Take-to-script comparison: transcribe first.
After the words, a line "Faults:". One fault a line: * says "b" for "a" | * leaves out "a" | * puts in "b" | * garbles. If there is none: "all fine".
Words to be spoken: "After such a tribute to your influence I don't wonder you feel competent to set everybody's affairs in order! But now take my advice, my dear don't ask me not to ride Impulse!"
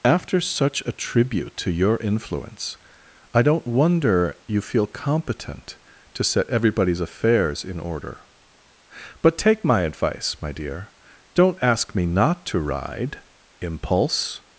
"After such a tribute to your influence I don't wonder you feel competent to set everybody's affairs in order! But take my advice, my dear don't ask me not to ride Impulse!"
Faults:
* leaves out "now"